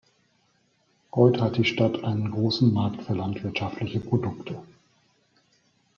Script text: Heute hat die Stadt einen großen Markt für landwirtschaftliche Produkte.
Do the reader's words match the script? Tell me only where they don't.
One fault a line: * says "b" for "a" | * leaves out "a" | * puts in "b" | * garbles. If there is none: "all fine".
all fine